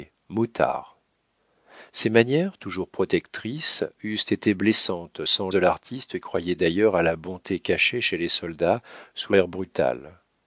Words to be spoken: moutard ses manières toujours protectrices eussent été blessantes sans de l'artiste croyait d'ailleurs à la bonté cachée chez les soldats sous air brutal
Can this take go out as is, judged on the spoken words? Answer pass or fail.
pass